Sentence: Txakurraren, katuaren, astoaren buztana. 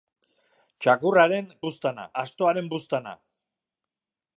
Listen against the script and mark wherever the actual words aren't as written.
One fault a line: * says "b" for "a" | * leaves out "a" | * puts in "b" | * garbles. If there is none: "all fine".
* says "buztana" for "katuaren"